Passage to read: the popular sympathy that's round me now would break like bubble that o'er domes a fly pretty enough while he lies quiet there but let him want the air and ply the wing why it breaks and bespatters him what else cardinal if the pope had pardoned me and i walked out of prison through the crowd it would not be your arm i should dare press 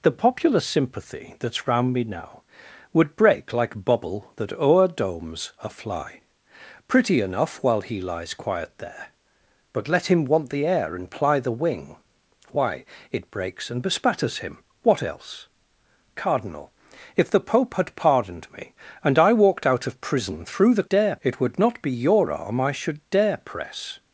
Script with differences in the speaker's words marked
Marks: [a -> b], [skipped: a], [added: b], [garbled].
the popular sympathy that's round me now would break like bubble that o'er domes a fly pretty enough while he lies quiet there but let him want the air and ply the wing why it breaks and bespatters him what else cardinal if the pope had pardoned me and i walked out of prison through the [crowd -> dare] it would not be your arm i should dare press